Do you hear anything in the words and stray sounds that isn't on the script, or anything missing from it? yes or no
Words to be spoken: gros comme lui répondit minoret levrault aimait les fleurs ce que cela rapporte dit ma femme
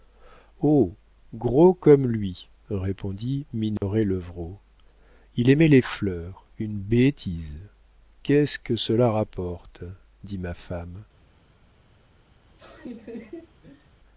yes